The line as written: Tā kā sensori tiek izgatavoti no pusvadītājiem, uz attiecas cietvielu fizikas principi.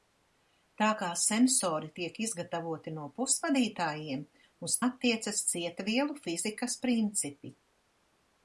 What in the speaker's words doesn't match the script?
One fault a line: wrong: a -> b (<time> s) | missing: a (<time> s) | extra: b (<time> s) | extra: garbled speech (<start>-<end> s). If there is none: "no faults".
no faults